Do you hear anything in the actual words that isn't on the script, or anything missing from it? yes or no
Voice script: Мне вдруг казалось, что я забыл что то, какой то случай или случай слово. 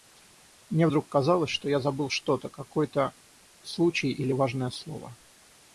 yes